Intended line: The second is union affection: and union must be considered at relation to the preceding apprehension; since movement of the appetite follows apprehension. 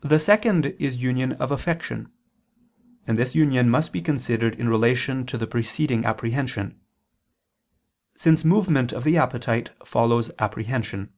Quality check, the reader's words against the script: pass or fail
fail